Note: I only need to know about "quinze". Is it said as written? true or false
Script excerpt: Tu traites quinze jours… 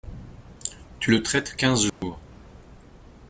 true